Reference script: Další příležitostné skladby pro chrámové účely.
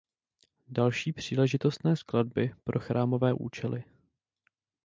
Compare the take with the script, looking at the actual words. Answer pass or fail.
pass